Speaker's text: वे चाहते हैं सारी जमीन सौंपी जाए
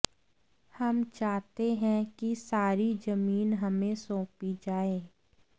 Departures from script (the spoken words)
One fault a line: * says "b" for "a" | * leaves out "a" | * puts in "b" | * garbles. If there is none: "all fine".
* says "हम" for "वे"
* puts in "कि"
* puts in "हमें"